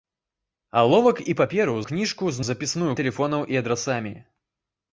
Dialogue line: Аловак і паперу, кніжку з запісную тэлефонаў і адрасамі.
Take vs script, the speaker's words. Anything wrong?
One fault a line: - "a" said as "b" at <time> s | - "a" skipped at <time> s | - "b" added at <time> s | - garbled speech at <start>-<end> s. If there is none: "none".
none